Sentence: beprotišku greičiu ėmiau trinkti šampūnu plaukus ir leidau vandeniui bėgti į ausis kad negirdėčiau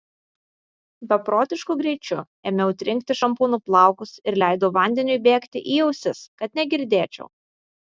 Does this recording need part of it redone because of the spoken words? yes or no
no